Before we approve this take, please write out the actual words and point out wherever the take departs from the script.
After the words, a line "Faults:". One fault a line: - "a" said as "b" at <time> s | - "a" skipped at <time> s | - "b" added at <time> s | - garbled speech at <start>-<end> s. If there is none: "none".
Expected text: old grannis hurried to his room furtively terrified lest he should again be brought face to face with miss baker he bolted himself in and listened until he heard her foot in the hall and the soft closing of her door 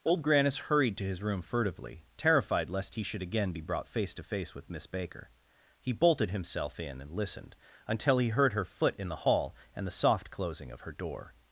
old grannis hurried to his room furtively terrified lest he should again be brought face to face with miss baker he bolted himself in and listened until he heard her foot in the hall and the soft closing of her door
Faults:
none